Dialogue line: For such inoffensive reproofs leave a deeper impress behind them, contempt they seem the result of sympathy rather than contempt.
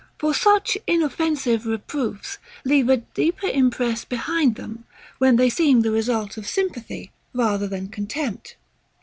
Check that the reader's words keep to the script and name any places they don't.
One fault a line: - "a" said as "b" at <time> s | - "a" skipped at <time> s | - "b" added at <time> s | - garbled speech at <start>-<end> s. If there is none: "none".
- "contempt" said as "when" at 5.2 s